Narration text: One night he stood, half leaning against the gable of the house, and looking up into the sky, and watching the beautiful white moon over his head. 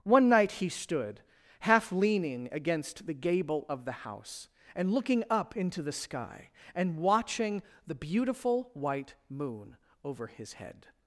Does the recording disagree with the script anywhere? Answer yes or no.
no